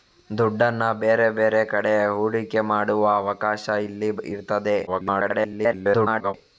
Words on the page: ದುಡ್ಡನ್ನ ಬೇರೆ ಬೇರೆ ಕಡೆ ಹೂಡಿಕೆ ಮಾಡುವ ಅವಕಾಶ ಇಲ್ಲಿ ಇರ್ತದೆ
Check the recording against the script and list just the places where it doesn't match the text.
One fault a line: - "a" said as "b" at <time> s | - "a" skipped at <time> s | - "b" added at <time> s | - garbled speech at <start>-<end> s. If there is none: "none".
- garbled speech at 4.9-6.3 s